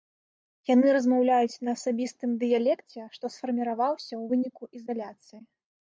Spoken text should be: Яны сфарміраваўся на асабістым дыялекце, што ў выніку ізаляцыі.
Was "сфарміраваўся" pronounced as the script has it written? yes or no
no